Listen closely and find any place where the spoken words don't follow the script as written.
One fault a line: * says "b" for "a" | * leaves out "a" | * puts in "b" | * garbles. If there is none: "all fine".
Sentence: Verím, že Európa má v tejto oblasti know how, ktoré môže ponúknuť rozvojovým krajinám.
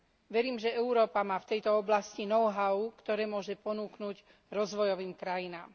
all fine